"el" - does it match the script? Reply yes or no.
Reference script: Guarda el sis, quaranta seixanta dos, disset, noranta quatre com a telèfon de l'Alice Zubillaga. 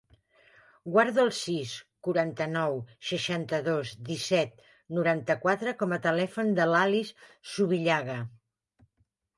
yes